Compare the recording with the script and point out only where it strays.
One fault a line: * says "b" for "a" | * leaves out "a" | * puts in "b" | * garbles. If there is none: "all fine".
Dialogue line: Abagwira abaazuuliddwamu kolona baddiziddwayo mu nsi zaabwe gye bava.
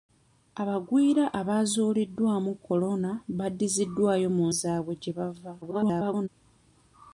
* leaves out "nsi"
* garbles